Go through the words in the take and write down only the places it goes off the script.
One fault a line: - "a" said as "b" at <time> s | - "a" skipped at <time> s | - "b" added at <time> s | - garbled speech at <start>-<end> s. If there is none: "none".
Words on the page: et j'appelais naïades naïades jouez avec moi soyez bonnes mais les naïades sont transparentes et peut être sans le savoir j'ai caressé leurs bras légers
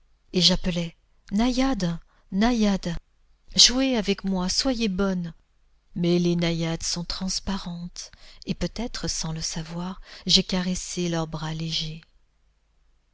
none